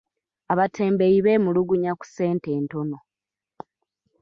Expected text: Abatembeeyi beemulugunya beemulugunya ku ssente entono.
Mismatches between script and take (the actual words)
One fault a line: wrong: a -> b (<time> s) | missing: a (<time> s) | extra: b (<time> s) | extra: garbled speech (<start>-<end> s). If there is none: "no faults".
missing: beemulugunya (1.9 s)